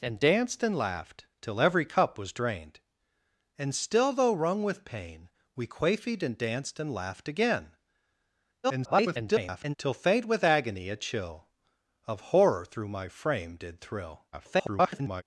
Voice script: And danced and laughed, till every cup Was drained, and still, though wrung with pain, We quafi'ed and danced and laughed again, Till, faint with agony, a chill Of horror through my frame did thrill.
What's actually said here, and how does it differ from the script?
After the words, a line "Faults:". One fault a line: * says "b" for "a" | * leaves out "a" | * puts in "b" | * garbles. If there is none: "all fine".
And danced and laughed, till every cup Was drained, and still, though wrung with pain, We quafi'ed and danced and laughed again, [garbled] Till, faint with agony, a chill Of horror through my frame did thrill. [garbled]
Faults:
* garbles
* garbles